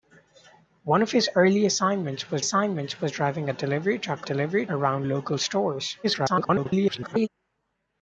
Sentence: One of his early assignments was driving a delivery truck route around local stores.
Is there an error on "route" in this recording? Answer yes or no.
yes